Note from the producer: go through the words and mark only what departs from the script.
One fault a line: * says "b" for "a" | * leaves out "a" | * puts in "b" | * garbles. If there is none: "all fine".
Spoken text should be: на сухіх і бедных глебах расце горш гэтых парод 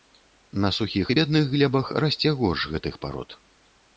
all fine